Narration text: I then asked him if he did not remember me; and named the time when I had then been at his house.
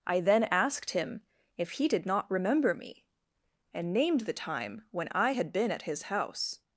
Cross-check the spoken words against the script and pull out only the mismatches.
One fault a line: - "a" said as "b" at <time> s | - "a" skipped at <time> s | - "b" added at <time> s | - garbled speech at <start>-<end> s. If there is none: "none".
- "then" skipped at 5.5 s